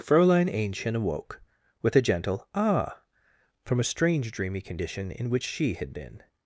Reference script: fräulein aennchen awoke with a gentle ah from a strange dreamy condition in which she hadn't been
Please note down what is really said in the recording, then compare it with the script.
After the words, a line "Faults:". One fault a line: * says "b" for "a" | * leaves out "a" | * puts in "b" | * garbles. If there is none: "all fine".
fräulein aennchen awoke with a gentle ah from a strange dreamy condition in which she had been
Faults:
* says "had" for "hadn't"